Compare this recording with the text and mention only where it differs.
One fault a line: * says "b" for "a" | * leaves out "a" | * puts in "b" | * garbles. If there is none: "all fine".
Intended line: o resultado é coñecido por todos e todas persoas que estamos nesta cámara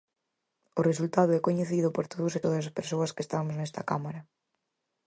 * puts in "as"